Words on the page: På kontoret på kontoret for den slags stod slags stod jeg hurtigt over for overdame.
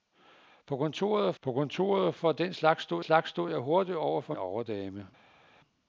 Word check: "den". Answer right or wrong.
right